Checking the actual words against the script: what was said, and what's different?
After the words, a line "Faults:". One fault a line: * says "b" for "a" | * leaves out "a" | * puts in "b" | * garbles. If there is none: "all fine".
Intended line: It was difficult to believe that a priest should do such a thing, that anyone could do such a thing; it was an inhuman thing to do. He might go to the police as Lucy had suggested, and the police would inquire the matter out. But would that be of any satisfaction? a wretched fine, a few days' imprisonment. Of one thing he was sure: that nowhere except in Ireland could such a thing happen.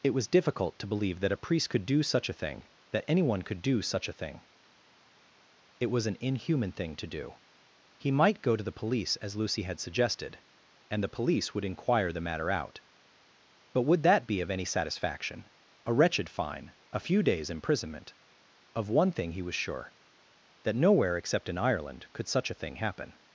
It was difficult to believe that a priest could do such a thing, that anyone could do such a thing; it was an inhuman thing to do. He might go to the police as Lucy had suggested, and the police would inquire the matter out. But would that be of any satisfaction? a wretched fine, a few days' imprisonment. Of one thing he was sure: that nowhere except in Ireland could such a thing happen.
Faults:
* says "could" for "should"